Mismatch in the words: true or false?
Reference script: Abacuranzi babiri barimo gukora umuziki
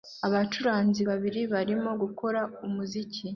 false